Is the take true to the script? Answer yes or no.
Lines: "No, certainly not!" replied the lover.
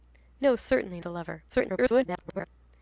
no